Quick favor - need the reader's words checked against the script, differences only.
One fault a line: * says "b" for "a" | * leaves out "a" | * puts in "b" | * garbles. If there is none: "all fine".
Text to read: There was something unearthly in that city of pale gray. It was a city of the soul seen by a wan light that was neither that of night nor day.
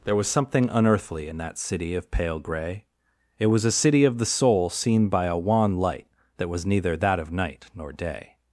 all fine